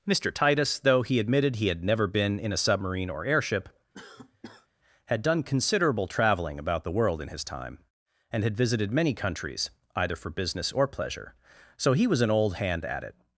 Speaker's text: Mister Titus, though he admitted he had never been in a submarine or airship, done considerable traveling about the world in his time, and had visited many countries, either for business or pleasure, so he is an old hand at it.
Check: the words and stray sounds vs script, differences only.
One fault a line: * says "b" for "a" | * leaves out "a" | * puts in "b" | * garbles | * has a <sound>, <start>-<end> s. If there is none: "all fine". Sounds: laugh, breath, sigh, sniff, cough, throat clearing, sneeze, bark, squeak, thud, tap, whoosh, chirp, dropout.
* has a cough, 3.9-4.7 s
* puts in "had"
* says "was" for "is"